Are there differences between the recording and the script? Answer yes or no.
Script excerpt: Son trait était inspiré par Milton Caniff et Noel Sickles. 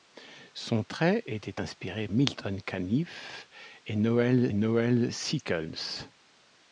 yes